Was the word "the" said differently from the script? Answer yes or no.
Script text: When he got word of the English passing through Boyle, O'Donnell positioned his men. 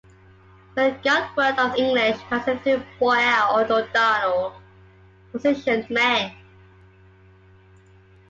yes